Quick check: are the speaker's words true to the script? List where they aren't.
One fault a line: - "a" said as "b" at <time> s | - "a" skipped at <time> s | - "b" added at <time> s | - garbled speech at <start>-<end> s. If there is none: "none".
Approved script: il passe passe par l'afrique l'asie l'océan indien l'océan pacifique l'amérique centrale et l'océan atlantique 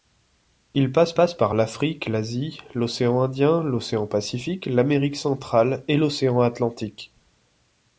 none